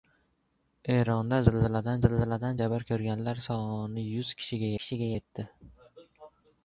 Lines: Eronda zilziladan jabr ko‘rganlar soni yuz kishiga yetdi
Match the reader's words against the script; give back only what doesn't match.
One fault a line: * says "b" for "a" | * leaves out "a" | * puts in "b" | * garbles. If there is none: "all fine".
* puts in "zilziladan"
* puts in "kishiga"